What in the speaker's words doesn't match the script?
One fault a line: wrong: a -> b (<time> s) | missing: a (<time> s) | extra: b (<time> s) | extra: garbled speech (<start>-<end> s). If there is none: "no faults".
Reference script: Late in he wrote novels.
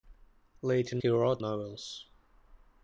no faults